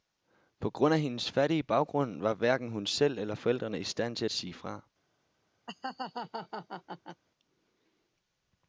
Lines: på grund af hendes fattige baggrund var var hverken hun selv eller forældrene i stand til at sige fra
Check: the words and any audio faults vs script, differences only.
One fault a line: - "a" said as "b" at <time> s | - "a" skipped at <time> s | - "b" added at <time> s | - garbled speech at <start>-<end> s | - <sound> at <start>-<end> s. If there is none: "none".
- "var" skipped at 2.3 s
- laugh at 5.7-7.2 s